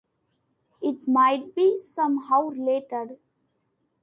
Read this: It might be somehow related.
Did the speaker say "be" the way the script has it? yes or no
yes